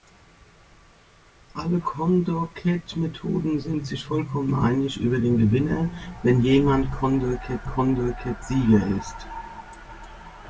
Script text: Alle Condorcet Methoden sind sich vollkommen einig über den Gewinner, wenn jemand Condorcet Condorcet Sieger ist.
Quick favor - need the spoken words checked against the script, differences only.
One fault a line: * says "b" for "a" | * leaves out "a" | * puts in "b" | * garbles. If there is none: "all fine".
all fine